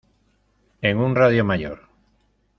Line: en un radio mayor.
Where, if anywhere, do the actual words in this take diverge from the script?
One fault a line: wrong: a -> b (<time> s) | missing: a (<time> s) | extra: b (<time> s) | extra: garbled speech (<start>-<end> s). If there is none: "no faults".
no faults